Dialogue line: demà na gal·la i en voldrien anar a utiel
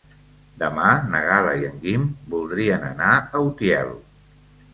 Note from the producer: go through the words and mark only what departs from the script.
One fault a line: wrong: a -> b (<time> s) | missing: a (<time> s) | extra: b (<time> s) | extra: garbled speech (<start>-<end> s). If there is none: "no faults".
extra: guim (1.8 s)